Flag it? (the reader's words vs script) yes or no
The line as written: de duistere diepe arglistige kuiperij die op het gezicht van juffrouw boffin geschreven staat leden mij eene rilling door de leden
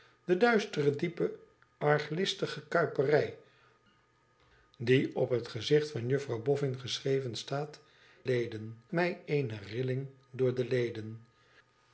no